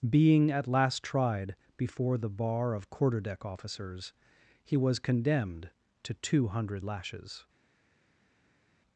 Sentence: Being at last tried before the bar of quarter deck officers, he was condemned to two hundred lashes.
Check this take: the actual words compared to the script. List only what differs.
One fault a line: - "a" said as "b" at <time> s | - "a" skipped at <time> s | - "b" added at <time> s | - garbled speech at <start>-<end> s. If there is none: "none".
none